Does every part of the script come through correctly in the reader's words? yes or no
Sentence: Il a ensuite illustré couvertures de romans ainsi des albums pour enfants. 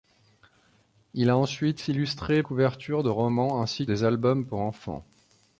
yes